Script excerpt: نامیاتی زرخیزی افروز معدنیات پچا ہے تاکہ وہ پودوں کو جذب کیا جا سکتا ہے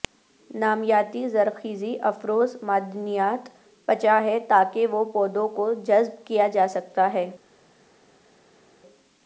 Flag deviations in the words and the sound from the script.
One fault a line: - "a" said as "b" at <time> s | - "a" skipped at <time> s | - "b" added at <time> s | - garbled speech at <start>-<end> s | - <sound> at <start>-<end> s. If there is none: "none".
none